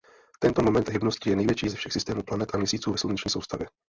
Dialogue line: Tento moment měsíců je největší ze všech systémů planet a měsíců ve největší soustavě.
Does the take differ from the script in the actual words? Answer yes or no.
yes